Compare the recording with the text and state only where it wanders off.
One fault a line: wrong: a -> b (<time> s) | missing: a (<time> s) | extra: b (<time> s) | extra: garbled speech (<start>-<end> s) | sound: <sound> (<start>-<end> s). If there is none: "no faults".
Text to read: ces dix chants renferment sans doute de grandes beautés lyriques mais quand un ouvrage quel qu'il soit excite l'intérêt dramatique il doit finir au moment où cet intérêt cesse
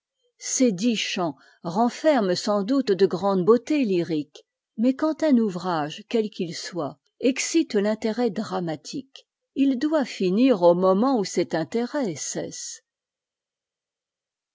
no faults